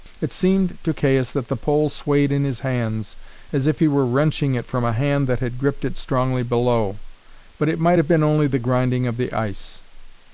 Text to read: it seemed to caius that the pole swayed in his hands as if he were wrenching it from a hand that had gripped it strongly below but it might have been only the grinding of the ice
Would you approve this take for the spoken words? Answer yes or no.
yes